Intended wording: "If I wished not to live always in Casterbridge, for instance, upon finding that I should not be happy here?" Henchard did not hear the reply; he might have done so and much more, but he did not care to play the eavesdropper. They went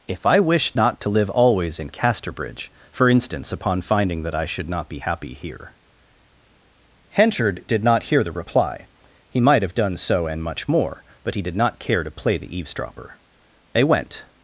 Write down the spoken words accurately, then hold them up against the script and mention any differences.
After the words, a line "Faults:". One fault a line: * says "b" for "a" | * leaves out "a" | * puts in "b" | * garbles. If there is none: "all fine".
"If I wished not to live always in Casterbridge, for instance, upon finding that I should not be happy here?" Henchard did not hear the reply; he might have done so and much more, but he did not care to play the eavesdropper. They went
Faults:
all fine